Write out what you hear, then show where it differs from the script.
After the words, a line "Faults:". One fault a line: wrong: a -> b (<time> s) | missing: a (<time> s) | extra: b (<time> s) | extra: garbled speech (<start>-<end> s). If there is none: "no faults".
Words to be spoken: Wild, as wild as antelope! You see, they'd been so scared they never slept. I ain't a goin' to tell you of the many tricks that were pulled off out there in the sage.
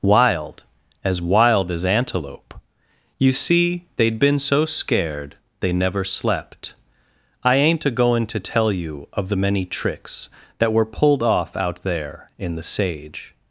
Wild, as wild as antelope! You see, they'd been so scared they never slept. I ain't a goin' to tell you of the many tricks that were pulled off out there in the sage.
Faults:
no faults